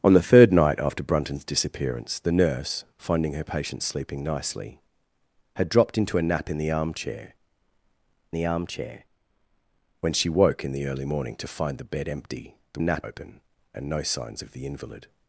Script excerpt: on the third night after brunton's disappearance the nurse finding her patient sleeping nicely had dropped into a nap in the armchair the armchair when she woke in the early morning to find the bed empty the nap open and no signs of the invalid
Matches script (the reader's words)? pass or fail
pass